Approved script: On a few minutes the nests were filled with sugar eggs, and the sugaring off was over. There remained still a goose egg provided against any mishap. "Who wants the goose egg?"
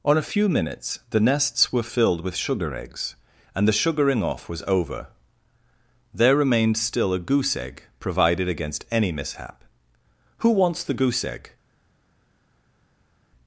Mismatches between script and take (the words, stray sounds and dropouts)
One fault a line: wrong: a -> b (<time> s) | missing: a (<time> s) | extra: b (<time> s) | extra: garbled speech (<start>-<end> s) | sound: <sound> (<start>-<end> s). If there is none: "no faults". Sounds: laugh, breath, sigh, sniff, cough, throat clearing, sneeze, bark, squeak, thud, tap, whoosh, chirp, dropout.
no faults